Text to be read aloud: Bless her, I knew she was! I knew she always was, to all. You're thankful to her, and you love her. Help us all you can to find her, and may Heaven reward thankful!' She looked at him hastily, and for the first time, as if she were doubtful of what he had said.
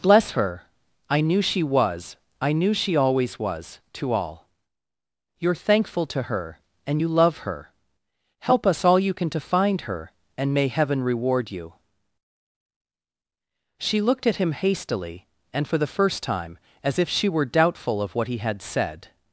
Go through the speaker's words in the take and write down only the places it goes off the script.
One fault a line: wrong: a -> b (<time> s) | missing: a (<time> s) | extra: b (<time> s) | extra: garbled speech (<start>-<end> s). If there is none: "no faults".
wrong: thankful -> you (11.5 s)